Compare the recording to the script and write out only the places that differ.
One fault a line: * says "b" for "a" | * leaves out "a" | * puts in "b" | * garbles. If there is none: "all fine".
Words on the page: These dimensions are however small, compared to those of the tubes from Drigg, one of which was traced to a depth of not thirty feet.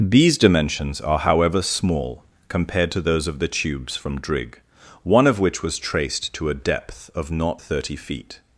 all fine